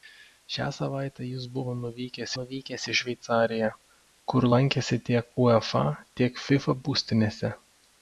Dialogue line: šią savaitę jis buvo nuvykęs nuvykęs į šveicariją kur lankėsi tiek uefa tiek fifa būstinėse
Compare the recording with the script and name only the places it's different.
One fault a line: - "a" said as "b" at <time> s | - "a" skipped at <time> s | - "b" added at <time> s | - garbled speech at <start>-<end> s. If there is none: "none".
none